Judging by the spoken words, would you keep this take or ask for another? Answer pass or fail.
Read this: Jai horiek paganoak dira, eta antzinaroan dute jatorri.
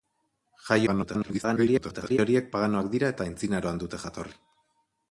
fail